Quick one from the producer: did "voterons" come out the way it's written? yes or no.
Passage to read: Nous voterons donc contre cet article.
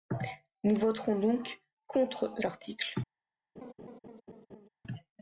yes